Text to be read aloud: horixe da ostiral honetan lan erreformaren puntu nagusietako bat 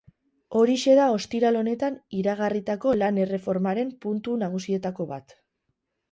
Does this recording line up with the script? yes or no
no